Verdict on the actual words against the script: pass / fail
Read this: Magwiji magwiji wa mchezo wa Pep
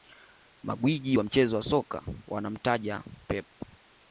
fail